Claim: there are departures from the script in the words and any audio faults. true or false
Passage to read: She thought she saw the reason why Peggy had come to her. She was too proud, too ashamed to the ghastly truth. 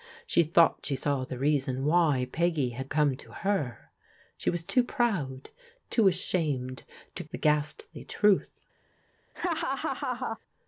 true